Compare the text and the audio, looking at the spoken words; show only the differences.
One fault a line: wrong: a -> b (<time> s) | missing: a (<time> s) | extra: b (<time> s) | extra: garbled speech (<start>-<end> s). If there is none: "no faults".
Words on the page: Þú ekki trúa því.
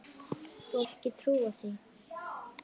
no faults